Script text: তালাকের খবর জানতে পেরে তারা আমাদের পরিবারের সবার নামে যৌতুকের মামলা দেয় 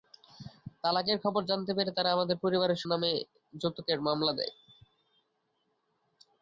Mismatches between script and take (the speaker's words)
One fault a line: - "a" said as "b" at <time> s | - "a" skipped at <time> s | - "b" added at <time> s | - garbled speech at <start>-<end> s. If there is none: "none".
- "সবার" skipped at 2.8 s